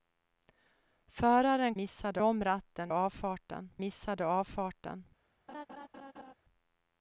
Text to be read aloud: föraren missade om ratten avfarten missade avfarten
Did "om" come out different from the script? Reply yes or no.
no